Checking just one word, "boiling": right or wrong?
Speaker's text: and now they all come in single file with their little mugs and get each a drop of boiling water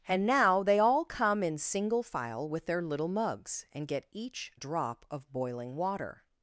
right